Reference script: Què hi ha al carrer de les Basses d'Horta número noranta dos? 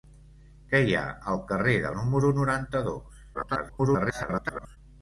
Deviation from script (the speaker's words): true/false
true